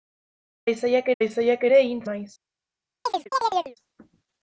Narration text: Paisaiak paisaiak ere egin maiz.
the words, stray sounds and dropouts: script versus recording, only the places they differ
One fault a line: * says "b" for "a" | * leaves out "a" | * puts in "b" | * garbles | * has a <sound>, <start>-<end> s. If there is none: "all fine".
* has a chirp, 3.0-3.8 s